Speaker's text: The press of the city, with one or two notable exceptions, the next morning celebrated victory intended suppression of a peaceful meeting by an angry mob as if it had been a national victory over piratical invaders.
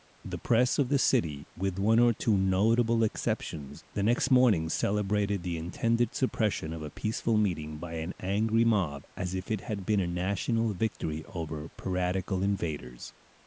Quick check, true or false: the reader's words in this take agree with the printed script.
false